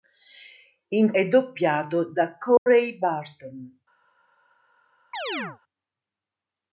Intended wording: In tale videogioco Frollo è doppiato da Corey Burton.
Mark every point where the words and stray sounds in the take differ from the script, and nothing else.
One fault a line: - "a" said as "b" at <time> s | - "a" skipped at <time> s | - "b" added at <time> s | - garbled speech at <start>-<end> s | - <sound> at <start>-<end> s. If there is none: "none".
- "tale videogioco Frollo" skipped at 1.1 s
- dropout at 2.6-2.7 s
- chirp at 5.1-5.6 s